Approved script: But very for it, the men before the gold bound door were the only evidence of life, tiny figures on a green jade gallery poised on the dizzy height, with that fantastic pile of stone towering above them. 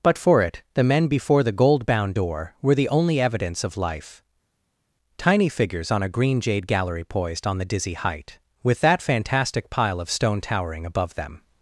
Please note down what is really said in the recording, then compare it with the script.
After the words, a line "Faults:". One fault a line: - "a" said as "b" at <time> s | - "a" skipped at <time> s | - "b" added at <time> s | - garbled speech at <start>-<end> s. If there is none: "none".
But for it, the men before the gold bound door were the only evidence of life, tiny figures on a green jade gallery poised on the dizzy height, with that fantastic pile of stone towering above them.
Faults:
- "very" skipped at 0.2 s